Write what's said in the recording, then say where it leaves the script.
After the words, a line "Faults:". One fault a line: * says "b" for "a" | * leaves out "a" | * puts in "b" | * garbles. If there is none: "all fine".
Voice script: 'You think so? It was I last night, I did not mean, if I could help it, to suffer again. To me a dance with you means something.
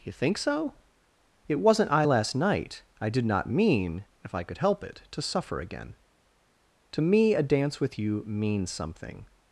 'You think so? It wasn't I last night, I did not mean, if I could help it, to suffer again. To me a dance with you means something.
Faults:
* says "wasn't" for "was"